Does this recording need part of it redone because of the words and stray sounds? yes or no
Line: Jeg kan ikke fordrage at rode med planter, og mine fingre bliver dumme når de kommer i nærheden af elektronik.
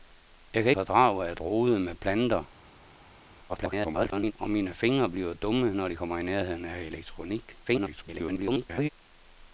yes